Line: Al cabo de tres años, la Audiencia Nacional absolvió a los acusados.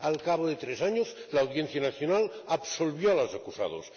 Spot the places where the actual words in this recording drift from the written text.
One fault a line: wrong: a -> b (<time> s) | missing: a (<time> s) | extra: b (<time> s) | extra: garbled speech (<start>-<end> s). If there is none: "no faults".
no faults